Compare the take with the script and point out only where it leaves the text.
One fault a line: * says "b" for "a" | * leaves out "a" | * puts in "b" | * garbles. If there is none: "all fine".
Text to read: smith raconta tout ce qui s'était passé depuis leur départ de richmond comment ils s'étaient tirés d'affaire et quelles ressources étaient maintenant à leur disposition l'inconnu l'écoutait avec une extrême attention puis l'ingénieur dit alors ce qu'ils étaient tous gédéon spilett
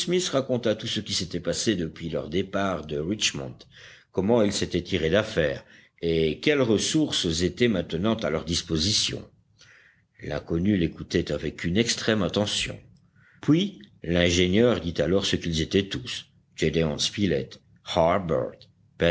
all fine